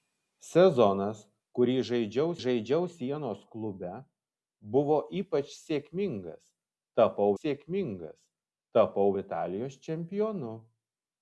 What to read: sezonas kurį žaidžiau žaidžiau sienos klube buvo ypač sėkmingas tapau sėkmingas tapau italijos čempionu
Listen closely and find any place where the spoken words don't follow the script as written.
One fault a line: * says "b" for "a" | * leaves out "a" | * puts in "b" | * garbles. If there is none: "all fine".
all fine